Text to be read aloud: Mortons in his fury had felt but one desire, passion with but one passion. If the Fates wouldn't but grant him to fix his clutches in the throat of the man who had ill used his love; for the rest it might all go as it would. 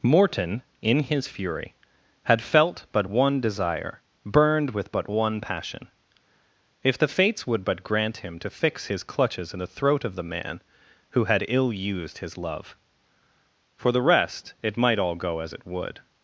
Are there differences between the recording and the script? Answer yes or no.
yes